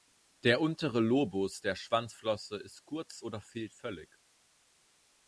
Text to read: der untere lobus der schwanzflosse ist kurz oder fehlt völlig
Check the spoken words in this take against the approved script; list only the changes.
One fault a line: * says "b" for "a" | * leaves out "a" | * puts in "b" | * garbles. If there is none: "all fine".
all fine